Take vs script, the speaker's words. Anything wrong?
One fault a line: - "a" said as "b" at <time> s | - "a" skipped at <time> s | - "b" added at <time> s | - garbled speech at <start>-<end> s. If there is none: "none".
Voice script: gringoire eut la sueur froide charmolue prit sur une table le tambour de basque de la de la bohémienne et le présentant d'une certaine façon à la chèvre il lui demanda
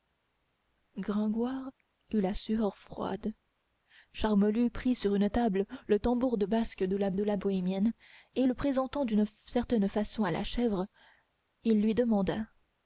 none